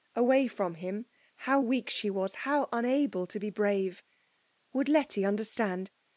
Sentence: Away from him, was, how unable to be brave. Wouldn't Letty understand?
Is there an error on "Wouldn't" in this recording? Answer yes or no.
yes